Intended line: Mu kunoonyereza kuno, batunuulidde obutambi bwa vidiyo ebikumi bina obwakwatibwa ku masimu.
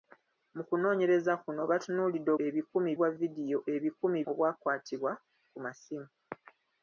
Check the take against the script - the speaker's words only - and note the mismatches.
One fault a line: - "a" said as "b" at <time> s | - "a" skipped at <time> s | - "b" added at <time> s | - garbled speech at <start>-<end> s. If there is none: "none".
- "obutambi" said as "ebikumi" at 2.4 s
- "bina" skipped at 4.2 s